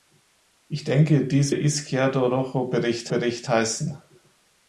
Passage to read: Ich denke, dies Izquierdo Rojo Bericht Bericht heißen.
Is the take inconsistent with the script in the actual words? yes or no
no